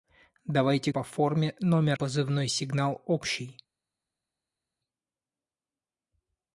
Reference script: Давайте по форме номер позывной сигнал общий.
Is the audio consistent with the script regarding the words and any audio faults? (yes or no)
yes